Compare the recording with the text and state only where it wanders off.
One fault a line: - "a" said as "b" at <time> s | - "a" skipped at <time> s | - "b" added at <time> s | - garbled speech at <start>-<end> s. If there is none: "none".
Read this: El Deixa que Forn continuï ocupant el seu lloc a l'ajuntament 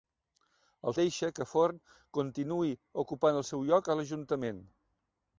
none